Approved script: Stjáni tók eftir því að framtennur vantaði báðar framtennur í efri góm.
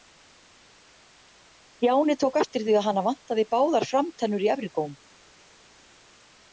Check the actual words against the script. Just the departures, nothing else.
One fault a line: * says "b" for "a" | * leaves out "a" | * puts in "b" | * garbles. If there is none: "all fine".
* says "hana" for "framtennur"